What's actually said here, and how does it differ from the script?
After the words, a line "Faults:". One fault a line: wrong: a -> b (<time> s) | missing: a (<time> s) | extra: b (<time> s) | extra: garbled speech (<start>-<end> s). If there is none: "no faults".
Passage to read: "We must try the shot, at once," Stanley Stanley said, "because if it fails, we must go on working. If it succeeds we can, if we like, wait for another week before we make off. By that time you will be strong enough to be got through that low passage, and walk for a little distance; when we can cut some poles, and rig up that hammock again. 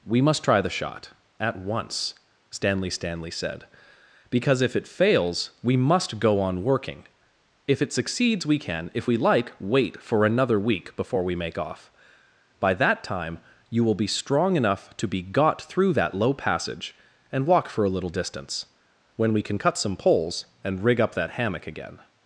"We must try the shot, at once," Stanley Stanley said, "because if it fails, we must go on working. If it succeeds we can, if we like, wait for another week before we make off. By that time you will be strong enough to be got through that low passage, and walk for a little distance; when we can cut some poles, and rig up that hammock again.
Faults:
no faults